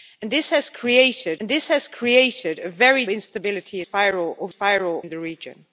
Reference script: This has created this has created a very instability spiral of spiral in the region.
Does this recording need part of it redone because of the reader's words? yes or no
no